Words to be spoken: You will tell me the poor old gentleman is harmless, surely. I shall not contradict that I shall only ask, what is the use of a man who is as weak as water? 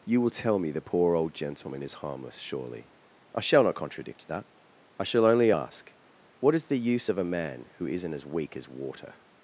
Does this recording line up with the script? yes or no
no